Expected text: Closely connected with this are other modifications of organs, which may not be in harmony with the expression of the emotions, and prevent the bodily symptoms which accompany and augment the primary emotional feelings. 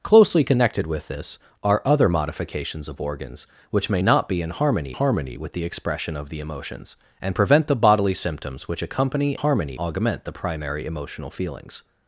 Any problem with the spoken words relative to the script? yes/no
yes